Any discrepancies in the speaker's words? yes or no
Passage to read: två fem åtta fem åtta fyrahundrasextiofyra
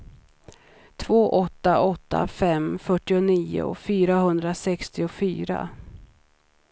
yes